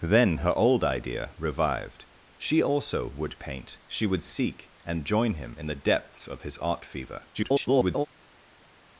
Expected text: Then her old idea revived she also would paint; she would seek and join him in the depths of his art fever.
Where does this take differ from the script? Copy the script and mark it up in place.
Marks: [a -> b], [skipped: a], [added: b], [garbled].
Then her old idea revived she also would paint; she would seek and join him in the depths of his art fever. [garbled]